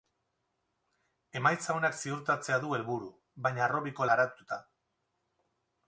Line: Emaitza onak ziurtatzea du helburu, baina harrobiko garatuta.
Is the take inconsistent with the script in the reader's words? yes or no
no